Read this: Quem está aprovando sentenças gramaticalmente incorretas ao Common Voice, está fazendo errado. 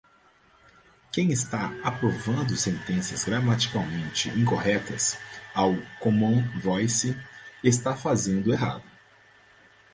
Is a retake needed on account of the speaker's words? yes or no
no